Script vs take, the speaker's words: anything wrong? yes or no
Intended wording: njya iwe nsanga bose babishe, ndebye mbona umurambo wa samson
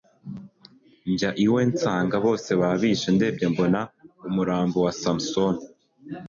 no